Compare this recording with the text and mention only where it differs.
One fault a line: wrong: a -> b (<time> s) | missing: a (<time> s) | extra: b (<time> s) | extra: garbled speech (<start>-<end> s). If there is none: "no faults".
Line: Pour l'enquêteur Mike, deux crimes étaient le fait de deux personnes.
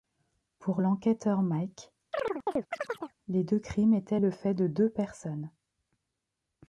extra: les (3.3 s)